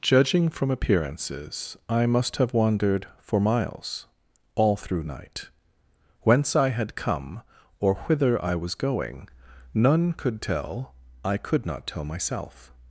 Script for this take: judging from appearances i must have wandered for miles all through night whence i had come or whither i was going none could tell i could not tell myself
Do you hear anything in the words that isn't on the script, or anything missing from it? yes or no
no